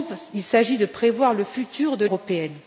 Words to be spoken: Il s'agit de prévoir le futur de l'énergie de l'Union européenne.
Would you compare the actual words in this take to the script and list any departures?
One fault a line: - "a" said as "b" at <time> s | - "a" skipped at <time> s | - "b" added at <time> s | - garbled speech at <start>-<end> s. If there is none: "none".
- "l'énergie de l'Union" skipped at 2.0 s